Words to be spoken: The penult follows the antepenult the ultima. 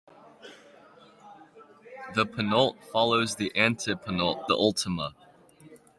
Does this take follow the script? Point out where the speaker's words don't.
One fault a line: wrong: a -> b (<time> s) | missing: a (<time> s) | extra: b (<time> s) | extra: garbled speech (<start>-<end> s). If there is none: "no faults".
no faults